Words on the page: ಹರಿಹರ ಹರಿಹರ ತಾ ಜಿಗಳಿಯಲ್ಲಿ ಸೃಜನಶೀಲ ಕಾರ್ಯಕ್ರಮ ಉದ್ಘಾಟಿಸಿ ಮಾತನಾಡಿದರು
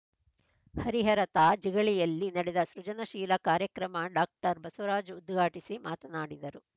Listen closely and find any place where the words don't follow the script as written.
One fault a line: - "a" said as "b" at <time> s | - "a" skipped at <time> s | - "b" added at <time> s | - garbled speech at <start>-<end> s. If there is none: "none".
- "ಹರಿಹರ" skipped at 1.2 s
- "ನಡೆದ" added at 2.3 s
- "ಡಾಕ್ಟರ್ ಬಸವರಾಜ್" added at 4.1 s